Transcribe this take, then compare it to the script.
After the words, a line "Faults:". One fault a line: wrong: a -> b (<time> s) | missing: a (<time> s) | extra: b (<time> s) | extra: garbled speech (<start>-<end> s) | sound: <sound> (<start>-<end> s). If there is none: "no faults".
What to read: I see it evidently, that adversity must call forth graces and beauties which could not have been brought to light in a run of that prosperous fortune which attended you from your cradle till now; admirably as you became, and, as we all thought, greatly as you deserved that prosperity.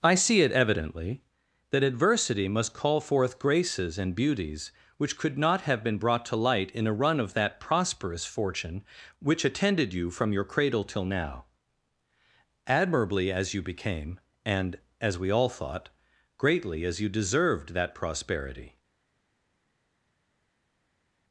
I see it evidently, that adversity must call forth graces and beauties which could not have been brought to light in a run of that prosperous fortune which attended you from your cradle till now; admirably as you became, and, as we all thought, greatly as you deserved that prosperity.
Faults:
no faults